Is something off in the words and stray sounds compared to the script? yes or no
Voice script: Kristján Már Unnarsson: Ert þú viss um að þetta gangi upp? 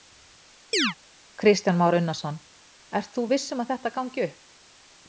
yes